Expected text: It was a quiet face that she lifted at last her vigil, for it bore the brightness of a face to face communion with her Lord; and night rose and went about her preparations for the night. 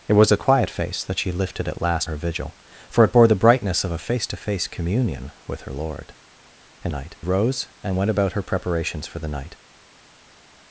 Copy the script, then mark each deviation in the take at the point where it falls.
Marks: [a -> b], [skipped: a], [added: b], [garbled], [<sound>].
It was a quiet face that she lifted at last her vigil, for it bore the brightness of a face to face communion with her Lord; and night rose and went about her preparations for the night.